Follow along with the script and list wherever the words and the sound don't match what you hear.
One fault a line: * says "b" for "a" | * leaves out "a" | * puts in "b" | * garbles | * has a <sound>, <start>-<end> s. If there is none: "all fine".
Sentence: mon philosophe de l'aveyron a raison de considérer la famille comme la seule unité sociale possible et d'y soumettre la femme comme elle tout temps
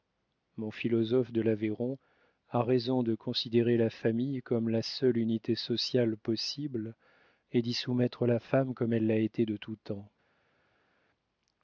* puts in "l'a été de"